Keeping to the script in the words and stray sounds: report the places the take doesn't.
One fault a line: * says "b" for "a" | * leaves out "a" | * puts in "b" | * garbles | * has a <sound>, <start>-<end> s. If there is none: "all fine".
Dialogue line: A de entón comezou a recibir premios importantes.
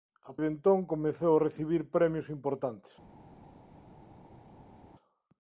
all fine